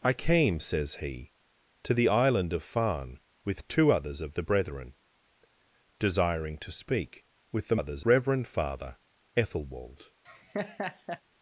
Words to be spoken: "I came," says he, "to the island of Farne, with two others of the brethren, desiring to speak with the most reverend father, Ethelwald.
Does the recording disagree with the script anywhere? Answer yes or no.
yes